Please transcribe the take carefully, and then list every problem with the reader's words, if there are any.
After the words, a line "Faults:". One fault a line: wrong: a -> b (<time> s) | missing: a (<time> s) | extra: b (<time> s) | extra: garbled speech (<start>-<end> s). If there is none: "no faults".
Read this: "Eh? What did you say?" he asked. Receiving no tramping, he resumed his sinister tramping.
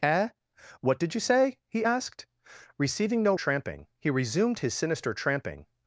"Eh? What did you say?" he asked. Receiving no tramping, he resumed his sinister tramping.
Faults:
no faults